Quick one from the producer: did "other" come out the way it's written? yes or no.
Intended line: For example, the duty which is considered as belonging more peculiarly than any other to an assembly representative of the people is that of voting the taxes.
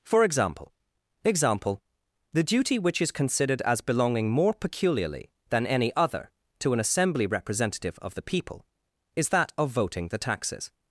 yes